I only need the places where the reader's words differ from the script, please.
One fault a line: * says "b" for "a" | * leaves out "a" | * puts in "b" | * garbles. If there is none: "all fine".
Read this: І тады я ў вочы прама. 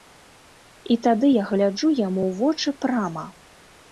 * puts in "гляджу яму"